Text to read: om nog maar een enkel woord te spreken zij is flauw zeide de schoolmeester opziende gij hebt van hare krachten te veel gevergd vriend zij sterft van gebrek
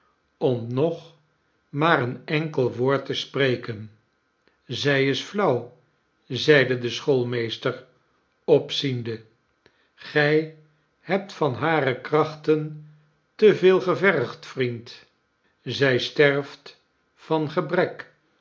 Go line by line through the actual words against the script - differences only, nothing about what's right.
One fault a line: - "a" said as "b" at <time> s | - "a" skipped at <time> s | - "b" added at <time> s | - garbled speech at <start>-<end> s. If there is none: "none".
none